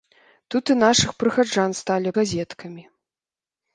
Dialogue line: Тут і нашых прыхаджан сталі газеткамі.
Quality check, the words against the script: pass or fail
pass